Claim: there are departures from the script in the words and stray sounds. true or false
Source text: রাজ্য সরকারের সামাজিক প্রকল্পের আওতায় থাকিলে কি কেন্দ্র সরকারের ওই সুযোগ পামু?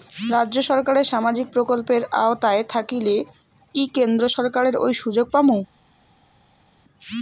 false